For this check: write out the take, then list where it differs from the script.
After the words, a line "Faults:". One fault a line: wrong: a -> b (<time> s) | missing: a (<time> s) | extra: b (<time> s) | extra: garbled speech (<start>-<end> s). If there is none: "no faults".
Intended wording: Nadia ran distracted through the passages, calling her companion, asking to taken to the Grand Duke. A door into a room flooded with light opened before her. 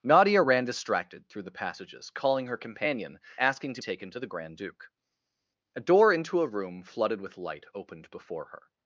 Nadia ran distracted through the passages, calling her companion, asking to taken to the Grand Duke. A door into a room flooded with light opened before her.
Faults:
no faults